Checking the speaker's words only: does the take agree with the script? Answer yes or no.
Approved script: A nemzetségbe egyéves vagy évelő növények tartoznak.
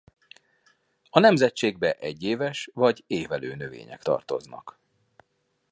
yes